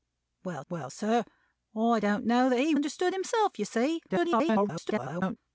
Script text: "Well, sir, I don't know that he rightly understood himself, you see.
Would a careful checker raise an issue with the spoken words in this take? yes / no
yes